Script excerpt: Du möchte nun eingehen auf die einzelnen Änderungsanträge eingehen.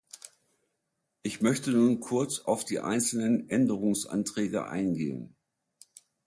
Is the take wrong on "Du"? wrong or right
wrong